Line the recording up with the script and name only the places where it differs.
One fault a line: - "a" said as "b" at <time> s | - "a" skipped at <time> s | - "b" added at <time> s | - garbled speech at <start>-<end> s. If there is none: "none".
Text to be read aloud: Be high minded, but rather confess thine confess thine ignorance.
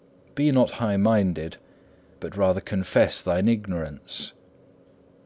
- "not" added at 0.5 s
- "confess thine" skipped at 3.5 s